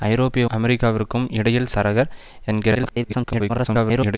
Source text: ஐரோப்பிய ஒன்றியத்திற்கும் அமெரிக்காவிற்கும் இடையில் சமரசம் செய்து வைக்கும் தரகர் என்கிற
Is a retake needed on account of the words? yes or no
yes